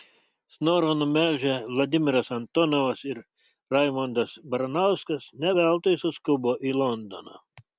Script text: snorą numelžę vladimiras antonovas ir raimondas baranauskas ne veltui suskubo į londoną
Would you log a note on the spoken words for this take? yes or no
no